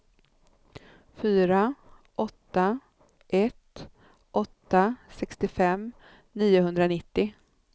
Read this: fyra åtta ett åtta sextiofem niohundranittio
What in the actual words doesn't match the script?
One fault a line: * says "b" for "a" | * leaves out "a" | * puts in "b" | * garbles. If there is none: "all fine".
all fine